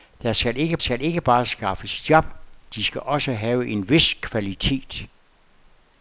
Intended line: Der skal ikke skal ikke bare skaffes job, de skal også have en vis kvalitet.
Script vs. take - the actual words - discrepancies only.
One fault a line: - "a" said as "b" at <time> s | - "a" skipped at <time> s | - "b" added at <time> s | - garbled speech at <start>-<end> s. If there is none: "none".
none